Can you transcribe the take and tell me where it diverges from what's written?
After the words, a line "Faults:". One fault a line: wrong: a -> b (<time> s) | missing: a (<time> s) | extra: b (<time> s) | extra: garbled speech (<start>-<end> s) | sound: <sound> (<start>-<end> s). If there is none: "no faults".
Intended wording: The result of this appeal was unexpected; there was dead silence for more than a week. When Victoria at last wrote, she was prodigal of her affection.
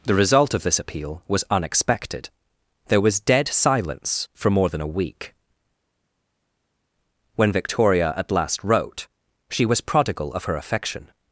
The result of this appeal was unexpected; there was dead silence for more than a week. When Victoria at last wrote, she was prodigal of her affection.
Faults:
no faults